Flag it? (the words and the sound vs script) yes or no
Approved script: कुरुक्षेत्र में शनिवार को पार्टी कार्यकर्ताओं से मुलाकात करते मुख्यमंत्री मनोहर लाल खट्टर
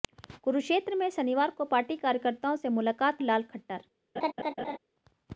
yes